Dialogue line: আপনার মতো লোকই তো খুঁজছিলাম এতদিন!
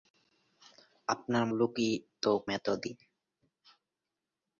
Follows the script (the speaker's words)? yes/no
no